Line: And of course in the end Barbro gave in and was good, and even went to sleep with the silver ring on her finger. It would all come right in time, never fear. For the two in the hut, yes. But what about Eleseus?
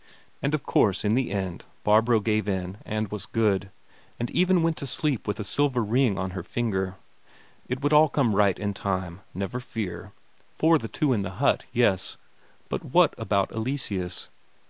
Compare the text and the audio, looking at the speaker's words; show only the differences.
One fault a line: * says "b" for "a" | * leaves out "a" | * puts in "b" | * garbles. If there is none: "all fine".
all fine